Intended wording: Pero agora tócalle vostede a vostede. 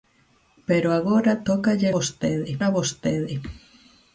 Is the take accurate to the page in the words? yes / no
yes